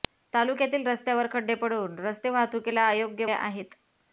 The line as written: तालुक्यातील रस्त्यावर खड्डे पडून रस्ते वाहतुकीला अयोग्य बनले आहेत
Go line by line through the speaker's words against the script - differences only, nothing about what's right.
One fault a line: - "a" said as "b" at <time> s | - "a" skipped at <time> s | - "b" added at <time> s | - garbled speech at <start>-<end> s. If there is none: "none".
- "बनले" skipped at 3.2 s